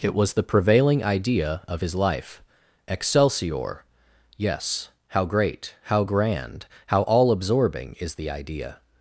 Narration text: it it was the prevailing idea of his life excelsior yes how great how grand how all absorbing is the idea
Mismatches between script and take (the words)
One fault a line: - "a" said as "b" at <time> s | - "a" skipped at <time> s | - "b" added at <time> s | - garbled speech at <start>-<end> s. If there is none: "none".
- "it" skipped at 0.1 s